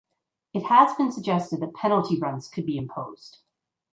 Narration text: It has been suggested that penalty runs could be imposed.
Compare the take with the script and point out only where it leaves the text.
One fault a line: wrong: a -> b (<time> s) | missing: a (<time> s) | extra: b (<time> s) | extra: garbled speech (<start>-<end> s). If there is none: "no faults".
no faults